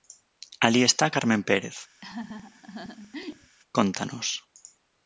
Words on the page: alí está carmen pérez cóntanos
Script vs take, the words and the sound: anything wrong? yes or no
yes